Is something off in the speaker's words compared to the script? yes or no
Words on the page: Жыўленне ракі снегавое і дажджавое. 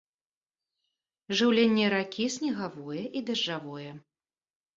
no